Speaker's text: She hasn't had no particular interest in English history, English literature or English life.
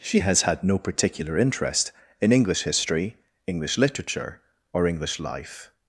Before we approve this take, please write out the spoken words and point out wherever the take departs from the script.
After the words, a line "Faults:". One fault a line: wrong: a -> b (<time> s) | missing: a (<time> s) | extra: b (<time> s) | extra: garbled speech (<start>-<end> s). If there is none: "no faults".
She has had no particular interest in English history, English literature or English life.
Faults:
wrong: hasn't -> has (0.2 s)